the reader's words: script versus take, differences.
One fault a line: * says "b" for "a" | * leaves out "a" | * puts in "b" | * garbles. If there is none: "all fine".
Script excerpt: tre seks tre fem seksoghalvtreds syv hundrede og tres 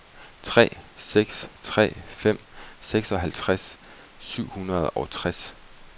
all fine